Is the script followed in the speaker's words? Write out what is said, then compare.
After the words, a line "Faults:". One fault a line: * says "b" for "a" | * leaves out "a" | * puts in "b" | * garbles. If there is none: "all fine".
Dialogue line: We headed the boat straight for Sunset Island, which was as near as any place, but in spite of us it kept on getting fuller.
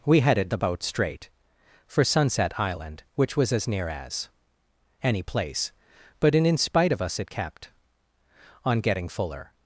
We headed the boat straight for Sunset Island, which was as near as any place, but in in spite of us it kept on getting fuller.
Faults:
* puts in "in"